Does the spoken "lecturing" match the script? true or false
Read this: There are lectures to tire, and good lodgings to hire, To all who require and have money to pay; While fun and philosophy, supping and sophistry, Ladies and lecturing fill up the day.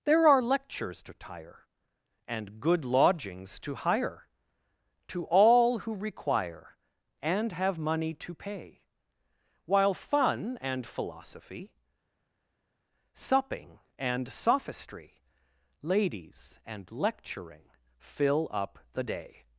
true